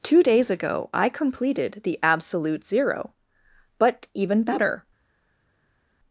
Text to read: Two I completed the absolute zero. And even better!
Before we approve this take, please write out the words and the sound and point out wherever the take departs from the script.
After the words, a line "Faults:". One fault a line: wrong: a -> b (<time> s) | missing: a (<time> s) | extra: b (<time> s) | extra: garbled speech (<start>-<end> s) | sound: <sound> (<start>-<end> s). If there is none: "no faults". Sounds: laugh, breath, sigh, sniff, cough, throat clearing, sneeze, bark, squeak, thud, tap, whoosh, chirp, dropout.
Two days ago I completed the absolute zero. But even better!
Faults:
extra: days ago (0.2 s)
wrong: And -> But (3.8 s)